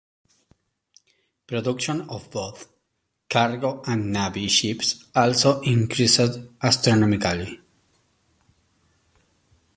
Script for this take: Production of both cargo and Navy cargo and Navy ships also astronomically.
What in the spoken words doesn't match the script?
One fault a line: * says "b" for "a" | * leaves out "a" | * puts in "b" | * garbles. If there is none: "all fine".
* leaves out "cargo and Navy"
* puts in "increased"